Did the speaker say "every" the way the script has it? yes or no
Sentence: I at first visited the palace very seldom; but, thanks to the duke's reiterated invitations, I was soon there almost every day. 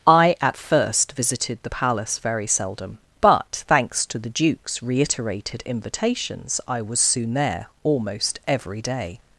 yes